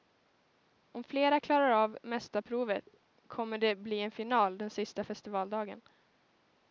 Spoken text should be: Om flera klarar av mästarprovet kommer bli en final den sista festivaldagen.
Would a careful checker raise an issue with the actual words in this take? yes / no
yes